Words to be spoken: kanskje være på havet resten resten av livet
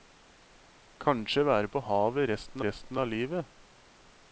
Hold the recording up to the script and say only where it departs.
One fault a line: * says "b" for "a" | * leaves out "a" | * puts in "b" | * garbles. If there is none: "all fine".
all fine